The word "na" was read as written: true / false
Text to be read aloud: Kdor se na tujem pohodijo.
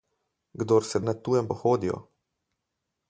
true